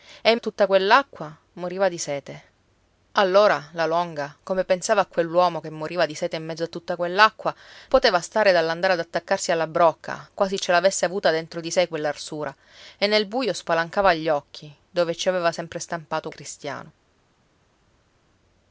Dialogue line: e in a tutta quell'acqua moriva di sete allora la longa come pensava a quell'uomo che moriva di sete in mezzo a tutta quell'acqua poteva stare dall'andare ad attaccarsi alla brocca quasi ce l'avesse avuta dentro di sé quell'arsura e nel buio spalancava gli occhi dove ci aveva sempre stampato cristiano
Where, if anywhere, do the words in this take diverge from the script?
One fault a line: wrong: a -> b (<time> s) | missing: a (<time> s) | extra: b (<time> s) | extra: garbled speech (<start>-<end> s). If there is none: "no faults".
no faults